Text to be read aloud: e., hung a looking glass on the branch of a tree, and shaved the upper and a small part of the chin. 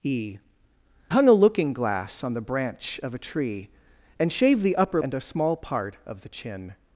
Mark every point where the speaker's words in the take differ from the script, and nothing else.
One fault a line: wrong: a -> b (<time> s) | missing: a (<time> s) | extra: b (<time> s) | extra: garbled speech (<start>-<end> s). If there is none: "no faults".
no faults